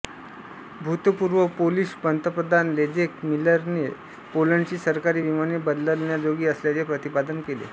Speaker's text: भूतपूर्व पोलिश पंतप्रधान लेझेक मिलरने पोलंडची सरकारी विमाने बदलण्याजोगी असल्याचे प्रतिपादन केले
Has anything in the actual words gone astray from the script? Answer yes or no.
no